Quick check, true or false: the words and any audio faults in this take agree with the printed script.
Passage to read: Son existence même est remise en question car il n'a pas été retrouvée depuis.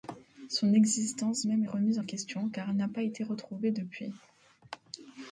false